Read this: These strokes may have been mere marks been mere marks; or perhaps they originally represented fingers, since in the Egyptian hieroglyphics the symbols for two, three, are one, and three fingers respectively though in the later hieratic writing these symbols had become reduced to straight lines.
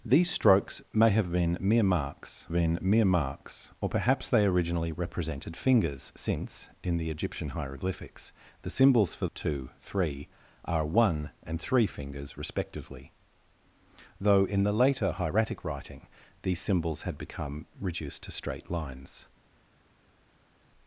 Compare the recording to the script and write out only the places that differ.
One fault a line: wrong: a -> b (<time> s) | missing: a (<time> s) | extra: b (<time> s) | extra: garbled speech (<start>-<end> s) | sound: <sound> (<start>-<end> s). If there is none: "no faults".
no faults